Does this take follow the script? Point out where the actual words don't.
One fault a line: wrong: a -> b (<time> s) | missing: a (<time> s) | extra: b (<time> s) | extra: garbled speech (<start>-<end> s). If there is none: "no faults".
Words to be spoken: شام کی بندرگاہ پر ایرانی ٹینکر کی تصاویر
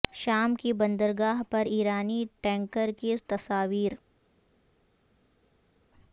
no faults